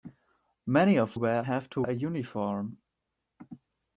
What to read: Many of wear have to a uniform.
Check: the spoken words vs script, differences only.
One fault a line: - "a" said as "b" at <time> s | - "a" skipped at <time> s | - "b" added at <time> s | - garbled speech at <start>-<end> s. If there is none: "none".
none